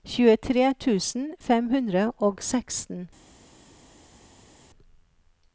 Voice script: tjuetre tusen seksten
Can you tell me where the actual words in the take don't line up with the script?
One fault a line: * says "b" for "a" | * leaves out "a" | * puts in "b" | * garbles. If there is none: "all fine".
* puts in "fem hundre og"